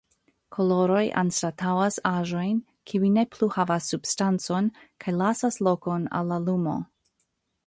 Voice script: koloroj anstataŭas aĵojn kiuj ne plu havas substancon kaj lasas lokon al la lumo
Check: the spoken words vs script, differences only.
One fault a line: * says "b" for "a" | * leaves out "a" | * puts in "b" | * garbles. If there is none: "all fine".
all fine